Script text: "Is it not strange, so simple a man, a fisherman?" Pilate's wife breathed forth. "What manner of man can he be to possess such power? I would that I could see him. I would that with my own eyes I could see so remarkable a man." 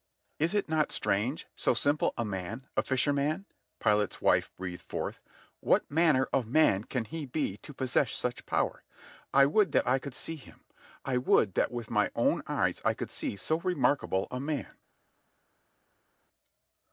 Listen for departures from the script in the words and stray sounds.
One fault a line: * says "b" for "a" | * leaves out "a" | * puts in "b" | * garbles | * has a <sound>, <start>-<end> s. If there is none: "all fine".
all fine